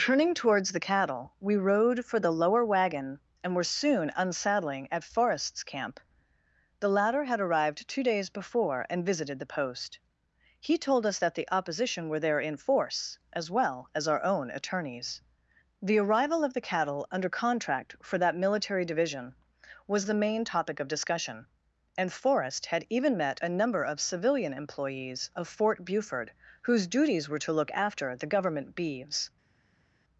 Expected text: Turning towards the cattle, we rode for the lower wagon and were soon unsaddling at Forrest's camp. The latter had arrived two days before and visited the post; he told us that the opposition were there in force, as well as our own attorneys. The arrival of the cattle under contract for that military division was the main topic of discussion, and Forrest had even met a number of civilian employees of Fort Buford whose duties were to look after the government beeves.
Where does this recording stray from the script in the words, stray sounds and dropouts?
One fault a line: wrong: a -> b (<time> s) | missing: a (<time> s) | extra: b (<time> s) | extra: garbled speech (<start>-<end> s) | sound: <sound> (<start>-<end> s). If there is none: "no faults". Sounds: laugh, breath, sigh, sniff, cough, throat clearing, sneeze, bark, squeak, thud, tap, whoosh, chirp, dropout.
no faults